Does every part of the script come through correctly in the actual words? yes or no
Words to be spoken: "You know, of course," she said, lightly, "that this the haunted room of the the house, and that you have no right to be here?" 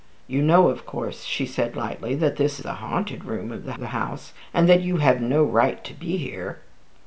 yes